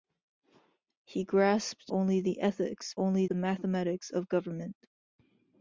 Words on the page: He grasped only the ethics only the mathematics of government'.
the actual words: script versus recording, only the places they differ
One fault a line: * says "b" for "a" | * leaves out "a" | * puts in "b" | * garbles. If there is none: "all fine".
all fine